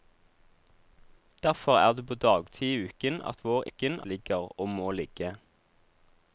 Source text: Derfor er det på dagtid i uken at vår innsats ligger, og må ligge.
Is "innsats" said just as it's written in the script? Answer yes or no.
no